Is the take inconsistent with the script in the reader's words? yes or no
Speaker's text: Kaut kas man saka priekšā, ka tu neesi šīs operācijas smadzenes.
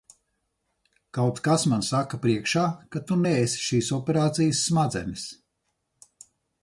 no